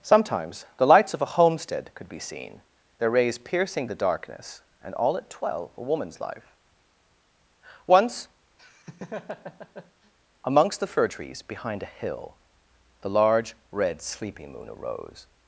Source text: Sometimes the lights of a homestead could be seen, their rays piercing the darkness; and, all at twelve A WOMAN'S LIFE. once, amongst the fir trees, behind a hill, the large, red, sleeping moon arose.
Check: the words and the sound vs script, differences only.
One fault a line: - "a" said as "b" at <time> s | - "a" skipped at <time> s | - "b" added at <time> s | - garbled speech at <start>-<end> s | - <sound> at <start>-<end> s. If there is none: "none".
- laugh at 8.6-10.1 s